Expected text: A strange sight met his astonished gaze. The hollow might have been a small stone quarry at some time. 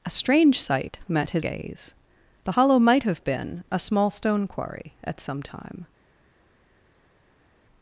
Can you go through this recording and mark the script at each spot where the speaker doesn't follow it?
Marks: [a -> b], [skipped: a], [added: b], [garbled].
A strange sight met his [skipped: astonished] gaze. The hollow might have been a small stone quarry at some time.